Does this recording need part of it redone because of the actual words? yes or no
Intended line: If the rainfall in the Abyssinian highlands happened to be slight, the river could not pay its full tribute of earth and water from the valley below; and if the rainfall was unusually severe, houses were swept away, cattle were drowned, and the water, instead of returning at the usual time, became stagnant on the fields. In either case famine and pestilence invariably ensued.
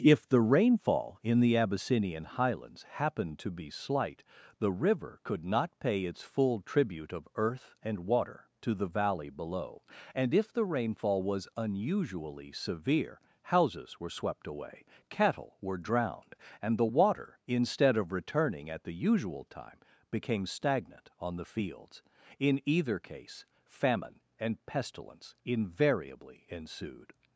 yes